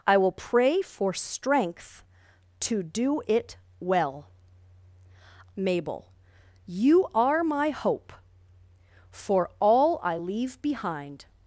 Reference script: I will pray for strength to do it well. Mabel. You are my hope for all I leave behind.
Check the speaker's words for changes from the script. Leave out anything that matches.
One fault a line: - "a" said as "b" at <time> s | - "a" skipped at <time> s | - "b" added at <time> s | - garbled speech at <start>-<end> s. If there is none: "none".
none